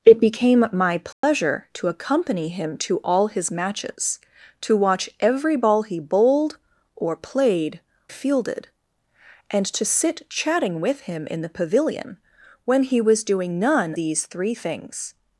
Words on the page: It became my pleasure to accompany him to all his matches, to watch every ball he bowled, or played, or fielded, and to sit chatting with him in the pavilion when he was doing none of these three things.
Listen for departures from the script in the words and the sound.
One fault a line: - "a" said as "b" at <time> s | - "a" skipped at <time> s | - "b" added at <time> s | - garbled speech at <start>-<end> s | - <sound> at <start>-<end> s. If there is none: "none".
- dropout at 1.1-1.2 s
- "or" skipped at 7.8 s
- "of" skipped at 14.0 s